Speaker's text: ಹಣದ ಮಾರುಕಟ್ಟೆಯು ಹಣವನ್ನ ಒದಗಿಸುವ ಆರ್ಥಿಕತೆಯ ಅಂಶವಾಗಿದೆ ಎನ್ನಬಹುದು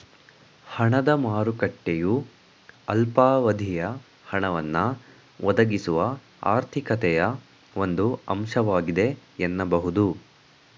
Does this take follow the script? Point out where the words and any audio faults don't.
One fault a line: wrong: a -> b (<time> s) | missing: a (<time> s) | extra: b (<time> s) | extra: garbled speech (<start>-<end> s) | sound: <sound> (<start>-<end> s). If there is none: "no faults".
extra: ಅಲ್ಪಾವಧಿಯ (2.9 s)
extra: ಒಂದು (7.8 s)